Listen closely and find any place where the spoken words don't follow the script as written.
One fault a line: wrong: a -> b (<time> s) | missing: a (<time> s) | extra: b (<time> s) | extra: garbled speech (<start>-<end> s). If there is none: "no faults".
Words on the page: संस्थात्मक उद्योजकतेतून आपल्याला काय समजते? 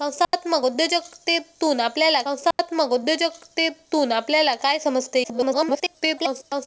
extra: संस्थात्मक उद्योजकतेतून आपल्याला (2.3 s)
extra: garbled speech (5.2-6.7 s)